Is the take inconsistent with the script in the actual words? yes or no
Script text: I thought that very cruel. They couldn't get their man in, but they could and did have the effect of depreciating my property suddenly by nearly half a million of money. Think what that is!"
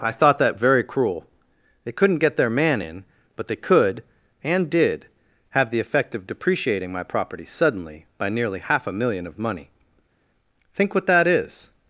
no